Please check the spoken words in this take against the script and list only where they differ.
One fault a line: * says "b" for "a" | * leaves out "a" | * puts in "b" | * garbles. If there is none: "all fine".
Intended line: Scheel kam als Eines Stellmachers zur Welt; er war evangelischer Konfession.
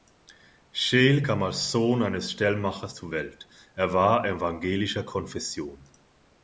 * puts in "Sohn"